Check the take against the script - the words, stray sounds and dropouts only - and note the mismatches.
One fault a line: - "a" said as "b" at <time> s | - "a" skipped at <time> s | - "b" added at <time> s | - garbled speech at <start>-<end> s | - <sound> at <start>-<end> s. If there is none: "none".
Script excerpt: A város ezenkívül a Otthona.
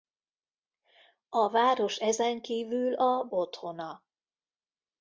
none